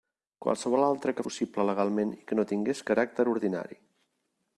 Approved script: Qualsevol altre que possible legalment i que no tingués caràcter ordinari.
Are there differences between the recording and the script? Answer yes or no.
no